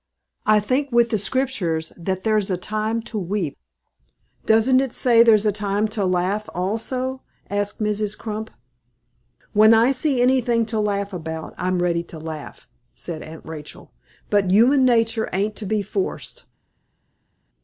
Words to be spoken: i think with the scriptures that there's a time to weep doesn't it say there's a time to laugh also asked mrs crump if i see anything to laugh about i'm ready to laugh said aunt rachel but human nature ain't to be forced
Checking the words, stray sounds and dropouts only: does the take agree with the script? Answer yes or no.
no